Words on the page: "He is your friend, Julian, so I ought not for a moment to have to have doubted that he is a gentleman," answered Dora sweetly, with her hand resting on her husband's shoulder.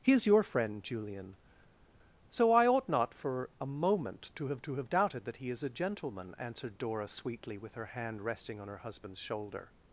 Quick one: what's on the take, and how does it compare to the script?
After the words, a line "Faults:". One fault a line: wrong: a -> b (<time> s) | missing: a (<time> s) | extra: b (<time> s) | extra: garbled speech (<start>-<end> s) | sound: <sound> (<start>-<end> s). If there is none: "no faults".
"He is your friend, Julian, so I ought not for a moment to have to have doubted that he is a gentleman," answered Dora sweetly, with her hand resting on her husband's shoulder.
Faults:
no faults